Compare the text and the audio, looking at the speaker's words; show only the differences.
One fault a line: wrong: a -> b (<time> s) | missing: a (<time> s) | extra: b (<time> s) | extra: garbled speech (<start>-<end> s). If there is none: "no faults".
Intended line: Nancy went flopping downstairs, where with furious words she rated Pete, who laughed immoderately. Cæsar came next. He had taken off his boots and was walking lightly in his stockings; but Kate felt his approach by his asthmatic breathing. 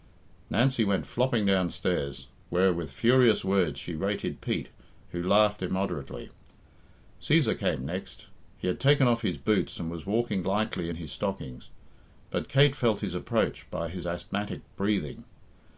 no faults